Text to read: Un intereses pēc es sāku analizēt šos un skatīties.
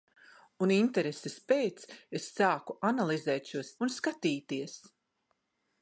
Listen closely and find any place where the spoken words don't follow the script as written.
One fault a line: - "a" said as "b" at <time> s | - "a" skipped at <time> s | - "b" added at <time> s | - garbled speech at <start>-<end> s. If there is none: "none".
none